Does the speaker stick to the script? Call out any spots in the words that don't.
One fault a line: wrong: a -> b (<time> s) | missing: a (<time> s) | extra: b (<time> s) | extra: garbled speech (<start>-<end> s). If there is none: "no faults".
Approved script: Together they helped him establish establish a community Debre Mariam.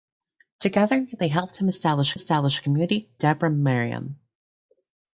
no faults